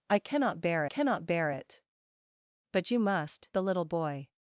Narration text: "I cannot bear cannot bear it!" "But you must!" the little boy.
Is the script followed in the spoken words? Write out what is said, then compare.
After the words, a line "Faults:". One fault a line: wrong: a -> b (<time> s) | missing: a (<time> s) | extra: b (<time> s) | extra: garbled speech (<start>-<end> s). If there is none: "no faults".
"I cannot bear cannot bear it!" "But you must!" the little boy.
Faults:
no faults